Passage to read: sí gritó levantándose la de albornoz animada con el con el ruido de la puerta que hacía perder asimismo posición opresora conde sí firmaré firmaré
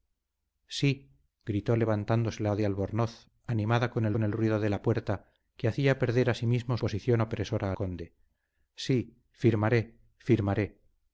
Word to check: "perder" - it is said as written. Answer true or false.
true